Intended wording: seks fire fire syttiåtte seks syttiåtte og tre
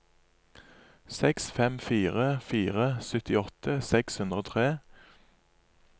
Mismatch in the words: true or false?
true